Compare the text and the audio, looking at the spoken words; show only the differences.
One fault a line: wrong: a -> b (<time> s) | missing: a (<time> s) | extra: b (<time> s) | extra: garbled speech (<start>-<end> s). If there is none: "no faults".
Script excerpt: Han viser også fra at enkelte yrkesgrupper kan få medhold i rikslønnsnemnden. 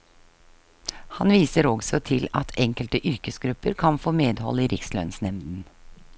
wrong: fra -> til (2.1 s)